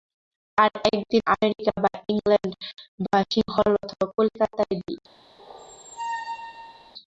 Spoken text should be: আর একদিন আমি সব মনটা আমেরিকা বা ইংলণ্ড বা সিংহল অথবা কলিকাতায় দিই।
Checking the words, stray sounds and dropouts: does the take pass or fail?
fail